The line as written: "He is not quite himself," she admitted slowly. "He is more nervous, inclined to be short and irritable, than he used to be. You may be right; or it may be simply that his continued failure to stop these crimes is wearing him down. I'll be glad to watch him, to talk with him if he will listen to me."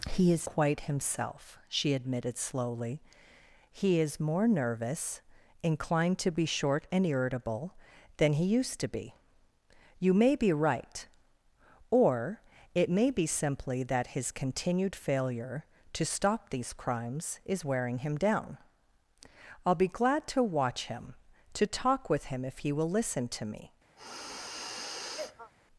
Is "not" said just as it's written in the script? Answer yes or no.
no